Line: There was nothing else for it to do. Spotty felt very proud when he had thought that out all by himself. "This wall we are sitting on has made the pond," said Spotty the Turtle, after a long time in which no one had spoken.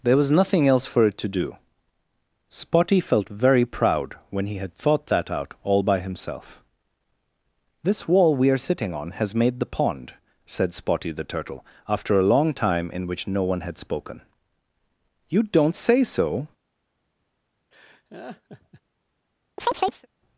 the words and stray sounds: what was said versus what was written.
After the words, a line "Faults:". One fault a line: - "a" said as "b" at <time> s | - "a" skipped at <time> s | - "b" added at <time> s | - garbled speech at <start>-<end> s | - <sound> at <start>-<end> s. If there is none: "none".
There was nothing else for it to do. Spotty felt very proud when he had thought that out all by himself. "This wall we are sitting on has made the pond," said Spotty the Turtle, after a long time in which no one had spoken. "You don't say so
Faults:
- "You don't say so" added at 15.3 s
- laugh at 17.7-18.8 s
- chirp at 19.6-20.1 s